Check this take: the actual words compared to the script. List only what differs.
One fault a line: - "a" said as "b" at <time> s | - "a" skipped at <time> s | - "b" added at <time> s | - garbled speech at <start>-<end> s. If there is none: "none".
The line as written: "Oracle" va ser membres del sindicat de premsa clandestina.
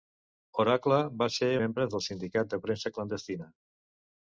none